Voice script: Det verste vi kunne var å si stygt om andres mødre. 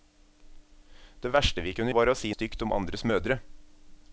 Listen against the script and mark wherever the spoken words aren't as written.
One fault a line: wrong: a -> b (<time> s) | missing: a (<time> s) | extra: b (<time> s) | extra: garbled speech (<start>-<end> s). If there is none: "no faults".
no faults